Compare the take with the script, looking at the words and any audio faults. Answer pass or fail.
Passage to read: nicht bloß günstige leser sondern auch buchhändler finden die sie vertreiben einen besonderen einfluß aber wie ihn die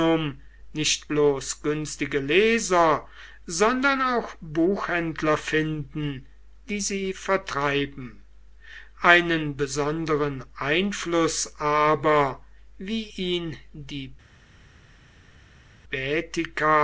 pass